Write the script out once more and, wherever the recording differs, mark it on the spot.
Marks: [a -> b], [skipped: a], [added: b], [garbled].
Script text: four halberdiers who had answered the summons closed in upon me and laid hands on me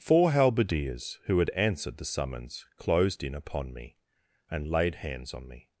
four halberdiers who had answered the summons closed in upon me and laid hands on me